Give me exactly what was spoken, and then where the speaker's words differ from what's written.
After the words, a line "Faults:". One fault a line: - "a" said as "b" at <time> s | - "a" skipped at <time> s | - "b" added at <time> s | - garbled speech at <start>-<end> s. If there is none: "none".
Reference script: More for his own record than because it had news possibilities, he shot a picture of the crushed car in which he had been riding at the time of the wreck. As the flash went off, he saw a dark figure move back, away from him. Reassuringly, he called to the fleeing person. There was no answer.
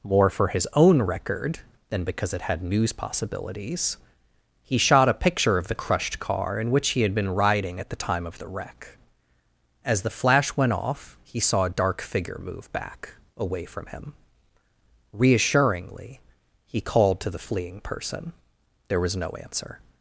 More for his own record than because it had news possibilities, he shot a picture of the crushed car in which he had been riding at the time of the wreck. As the flash went off, he saw a dark figure move back, away from him. Reassuringly, he called to the fleeing person. There was no answer.
Faults:
none